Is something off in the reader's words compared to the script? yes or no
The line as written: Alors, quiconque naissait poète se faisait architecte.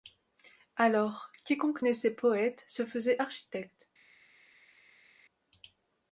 no